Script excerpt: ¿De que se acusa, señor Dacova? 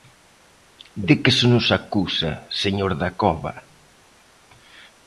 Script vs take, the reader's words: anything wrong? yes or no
yes